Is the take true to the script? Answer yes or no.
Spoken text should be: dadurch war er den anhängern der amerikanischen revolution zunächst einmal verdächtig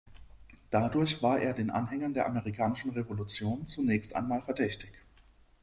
yes